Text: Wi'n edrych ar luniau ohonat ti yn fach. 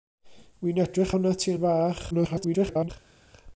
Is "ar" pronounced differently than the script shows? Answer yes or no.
yes